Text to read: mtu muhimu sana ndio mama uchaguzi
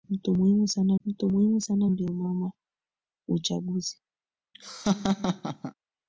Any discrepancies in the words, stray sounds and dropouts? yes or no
yes